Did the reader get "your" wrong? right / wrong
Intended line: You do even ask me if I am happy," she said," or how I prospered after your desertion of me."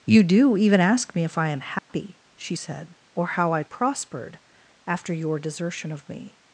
right